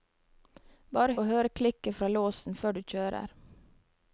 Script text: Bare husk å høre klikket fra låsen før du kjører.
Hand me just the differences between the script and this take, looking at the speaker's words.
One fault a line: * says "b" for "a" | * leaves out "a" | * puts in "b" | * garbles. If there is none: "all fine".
* leaves out "husk"